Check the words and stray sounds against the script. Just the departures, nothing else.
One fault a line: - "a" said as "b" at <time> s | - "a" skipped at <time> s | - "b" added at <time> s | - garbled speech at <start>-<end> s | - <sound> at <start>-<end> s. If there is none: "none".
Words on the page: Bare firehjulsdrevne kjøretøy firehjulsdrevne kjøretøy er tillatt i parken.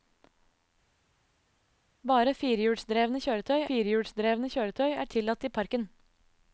none